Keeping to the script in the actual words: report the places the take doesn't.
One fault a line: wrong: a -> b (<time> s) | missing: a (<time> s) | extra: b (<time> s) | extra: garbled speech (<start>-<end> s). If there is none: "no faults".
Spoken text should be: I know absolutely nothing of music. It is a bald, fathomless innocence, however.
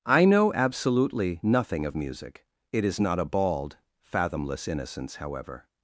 extra: not (3.0 s)